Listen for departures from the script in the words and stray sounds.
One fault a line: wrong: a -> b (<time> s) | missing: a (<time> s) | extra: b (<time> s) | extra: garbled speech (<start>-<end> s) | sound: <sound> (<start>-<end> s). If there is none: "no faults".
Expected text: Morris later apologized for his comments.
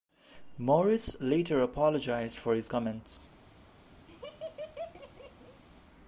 sound: laugh (4.1-5.6 s)